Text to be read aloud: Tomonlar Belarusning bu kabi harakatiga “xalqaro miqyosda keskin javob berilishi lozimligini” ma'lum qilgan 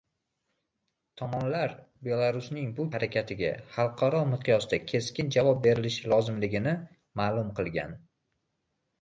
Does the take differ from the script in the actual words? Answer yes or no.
yes